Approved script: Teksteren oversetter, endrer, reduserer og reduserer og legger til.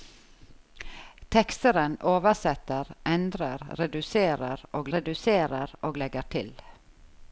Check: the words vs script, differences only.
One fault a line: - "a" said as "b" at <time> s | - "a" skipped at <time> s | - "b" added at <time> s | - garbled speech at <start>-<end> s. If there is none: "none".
none